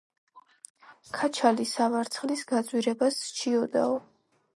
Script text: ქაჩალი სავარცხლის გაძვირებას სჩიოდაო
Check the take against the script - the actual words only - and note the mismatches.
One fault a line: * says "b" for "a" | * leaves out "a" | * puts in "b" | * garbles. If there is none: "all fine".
all fine